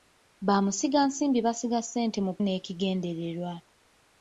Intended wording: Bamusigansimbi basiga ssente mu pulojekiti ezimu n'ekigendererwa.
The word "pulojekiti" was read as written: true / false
false